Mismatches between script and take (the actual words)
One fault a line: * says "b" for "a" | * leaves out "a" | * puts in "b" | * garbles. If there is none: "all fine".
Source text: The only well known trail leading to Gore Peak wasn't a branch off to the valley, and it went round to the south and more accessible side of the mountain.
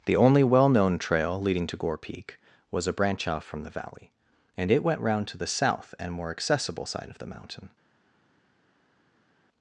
* says "was" for "wasn't"
* says "from" for "to"